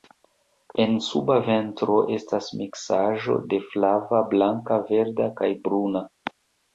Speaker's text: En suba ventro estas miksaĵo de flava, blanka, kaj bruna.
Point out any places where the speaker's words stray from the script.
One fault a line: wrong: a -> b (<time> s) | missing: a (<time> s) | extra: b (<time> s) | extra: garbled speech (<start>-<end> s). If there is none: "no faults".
extra: verda (4.9 s)